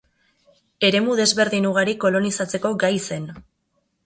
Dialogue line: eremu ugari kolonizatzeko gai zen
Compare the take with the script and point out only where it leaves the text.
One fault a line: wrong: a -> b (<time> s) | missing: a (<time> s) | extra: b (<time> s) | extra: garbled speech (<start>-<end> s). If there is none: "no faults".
extra: desberdin (1.2 s)